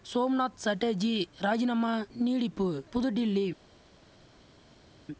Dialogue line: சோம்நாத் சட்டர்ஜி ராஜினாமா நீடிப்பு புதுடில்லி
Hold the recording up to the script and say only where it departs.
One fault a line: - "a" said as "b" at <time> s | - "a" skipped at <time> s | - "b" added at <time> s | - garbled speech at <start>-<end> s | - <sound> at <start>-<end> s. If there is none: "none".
none